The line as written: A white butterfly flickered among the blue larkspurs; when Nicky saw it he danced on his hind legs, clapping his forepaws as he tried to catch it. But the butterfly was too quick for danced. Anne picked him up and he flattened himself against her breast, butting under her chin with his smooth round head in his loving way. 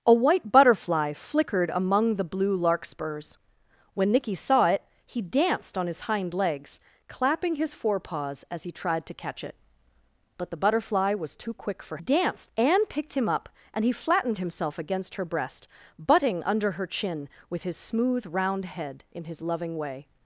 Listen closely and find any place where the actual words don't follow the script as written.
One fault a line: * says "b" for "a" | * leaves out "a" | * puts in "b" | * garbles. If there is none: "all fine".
all fine